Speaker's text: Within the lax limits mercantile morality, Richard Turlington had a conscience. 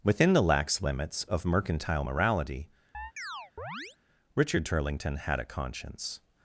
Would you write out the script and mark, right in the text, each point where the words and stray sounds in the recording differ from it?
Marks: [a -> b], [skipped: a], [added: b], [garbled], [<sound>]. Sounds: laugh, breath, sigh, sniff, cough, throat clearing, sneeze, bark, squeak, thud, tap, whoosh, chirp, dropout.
Within the lax limits [added: of] mercantile morality, [chirp] Richard Turlington had a conscience.